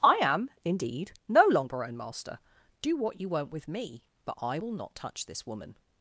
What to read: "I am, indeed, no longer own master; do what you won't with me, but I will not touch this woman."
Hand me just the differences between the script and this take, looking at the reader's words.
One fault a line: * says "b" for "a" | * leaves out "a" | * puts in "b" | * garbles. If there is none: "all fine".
all fine